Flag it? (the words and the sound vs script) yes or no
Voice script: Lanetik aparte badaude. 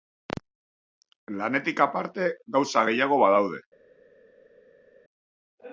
yes